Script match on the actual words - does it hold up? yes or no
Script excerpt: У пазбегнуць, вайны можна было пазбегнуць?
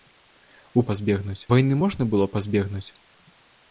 yes